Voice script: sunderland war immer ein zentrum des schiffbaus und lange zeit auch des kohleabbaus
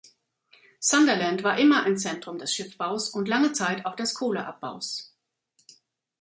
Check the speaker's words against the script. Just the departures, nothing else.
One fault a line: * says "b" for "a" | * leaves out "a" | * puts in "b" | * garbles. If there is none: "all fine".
all fine